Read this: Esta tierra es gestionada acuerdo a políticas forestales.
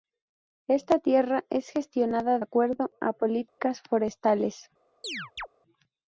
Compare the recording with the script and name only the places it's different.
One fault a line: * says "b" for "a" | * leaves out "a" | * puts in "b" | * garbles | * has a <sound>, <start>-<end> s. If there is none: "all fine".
* has a dropout, 3.5-3.6 s
* has a chirp, 5.0-5.5 s